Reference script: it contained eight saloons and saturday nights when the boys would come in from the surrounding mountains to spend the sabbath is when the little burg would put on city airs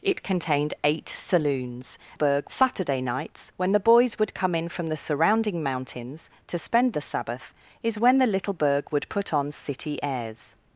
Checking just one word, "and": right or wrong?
wrong